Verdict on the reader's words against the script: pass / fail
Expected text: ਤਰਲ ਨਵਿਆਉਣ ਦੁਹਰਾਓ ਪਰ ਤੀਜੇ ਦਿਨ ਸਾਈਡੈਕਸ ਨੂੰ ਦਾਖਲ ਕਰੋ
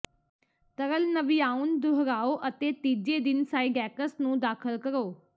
fail